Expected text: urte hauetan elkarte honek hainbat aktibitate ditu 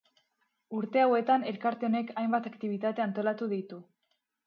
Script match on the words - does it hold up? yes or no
no